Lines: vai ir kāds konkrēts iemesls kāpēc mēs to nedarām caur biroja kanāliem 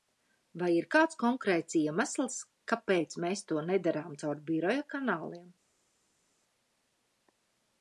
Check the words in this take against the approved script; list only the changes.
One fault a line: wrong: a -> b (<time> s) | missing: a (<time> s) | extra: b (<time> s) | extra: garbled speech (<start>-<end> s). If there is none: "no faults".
no faults